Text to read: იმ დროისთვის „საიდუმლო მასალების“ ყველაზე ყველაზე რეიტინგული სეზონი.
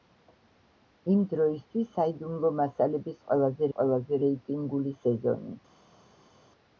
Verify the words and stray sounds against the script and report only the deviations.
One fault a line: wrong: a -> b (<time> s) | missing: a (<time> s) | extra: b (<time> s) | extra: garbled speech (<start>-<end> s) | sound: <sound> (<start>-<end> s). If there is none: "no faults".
no faults